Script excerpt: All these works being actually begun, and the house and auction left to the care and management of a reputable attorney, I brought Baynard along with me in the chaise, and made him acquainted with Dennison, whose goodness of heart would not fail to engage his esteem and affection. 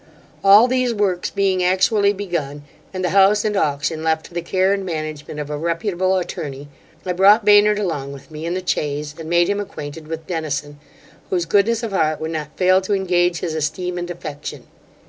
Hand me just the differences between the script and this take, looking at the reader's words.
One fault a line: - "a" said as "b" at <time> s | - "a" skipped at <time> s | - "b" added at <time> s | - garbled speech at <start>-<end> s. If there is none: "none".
none